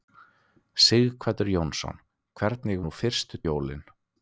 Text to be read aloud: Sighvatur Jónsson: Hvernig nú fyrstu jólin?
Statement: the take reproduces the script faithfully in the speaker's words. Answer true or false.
true